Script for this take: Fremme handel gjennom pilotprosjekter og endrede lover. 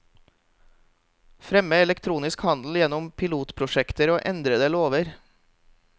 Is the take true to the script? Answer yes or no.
no